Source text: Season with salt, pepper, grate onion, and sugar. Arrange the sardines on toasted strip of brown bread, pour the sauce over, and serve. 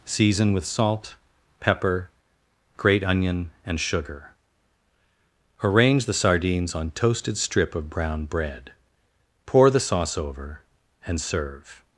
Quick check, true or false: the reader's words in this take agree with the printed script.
true